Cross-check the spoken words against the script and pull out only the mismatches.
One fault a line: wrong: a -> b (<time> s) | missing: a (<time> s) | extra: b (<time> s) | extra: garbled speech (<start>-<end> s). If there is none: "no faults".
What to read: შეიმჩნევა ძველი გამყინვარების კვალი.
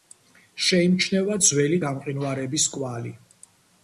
no faults